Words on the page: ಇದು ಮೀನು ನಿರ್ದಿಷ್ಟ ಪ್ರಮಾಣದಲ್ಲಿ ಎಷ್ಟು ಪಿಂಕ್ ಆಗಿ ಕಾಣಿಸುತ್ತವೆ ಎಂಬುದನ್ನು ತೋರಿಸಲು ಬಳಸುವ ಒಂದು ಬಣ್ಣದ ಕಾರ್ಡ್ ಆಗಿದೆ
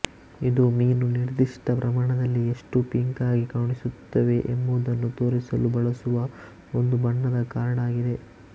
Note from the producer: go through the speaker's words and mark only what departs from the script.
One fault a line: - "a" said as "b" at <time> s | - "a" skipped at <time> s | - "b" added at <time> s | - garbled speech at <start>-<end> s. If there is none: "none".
none